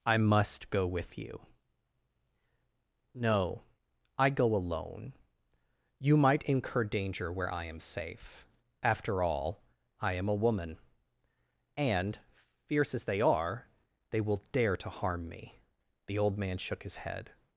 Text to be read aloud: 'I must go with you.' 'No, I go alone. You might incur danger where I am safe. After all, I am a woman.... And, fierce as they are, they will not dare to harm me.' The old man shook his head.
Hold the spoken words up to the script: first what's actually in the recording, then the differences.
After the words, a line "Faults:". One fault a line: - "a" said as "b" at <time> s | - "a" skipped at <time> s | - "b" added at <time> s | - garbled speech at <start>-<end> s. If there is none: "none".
'I must go with you.' 'No, I go alone. You might incur danger where I am safe. After all, I am a woman.... And, fierce as they are, they will dare to harm me.' The old man shook his head.
Faults:
- "not" skipped at 14.4 s